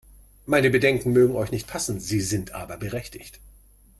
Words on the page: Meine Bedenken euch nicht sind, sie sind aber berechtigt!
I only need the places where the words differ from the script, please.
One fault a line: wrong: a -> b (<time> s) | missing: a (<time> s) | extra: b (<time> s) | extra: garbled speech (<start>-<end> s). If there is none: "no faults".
extra: mögen (1.1 s)
wrong: sind -> passen (1.7 s)